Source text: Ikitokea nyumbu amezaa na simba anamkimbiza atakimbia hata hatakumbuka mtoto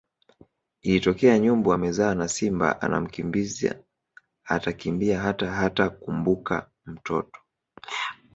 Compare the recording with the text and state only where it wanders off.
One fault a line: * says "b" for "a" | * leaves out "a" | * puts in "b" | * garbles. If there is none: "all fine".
all fine